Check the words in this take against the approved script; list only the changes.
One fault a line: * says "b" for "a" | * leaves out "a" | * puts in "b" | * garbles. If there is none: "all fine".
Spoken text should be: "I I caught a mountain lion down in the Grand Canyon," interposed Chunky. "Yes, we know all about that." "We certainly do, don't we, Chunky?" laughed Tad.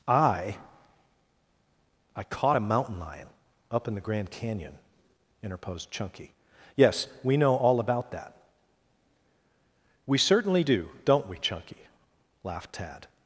* says "up" for "down"